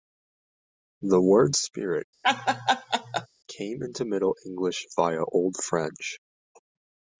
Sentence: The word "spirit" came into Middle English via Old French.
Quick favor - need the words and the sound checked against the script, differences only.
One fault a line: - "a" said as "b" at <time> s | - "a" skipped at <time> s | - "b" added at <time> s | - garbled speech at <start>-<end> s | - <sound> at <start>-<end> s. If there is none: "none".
- laugh at 2.2-3.3 s